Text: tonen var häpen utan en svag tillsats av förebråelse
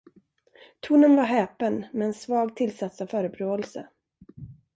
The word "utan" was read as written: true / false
false